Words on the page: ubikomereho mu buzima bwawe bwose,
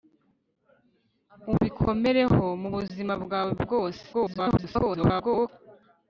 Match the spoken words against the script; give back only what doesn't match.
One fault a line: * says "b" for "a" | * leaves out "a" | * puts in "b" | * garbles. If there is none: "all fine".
* garbles